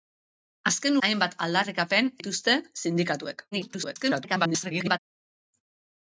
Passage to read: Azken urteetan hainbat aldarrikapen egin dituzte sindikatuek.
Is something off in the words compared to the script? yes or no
yes